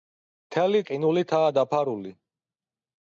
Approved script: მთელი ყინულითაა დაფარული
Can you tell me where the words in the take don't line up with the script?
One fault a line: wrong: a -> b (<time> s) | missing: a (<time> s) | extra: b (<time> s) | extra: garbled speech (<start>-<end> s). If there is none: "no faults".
no faults